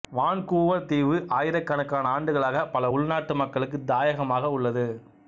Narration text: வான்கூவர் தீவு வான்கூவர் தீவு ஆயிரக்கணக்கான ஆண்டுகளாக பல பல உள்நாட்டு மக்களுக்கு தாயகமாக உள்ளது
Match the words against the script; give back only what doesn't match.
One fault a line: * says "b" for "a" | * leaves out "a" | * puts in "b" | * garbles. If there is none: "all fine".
* leaves out "வான்கூவர் தீவு"
* leaves out "பல"